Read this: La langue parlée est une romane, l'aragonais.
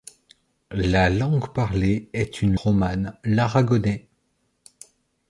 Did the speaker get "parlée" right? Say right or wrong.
right